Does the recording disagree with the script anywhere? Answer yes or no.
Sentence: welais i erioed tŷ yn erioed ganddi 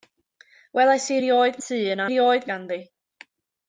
no